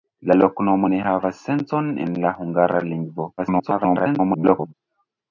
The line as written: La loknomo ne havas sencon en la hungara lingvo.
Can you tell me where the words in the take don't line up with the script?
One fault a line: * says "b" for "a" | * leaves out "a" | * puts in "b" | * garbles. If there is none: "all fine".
* garbles